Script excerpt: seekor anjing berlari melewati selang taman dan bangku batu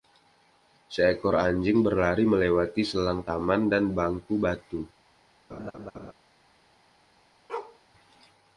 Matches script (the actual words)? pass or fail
pass